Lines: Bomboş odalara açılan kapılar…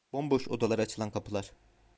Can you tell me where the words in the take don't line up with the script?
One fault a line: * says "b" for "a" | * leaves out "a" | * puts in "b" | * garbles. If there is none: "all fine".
all fine